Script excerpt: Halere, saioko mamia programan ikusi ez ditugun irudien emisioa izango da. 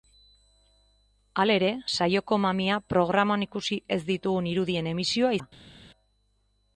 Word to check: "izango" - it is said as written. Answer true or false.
false